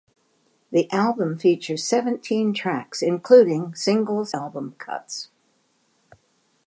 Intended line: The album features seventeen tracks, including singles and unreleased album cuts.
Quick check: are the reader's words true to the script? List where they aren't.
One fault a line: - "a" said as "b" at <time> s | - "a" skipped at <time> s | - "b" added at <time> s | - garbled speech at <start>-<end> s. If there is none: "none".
- "and unreleased" skipped at 4.3 s